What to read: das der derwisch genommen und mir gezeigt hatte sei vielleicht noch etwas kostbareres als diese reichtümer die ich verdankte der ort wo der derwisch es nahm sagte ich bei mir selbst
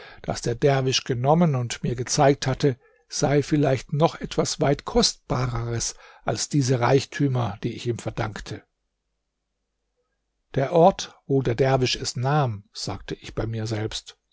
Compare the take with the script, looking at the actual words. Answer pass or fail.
fail